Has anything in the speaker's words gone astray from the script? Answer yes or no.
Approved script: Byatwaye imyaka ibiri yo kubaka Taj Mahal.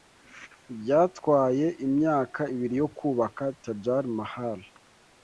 no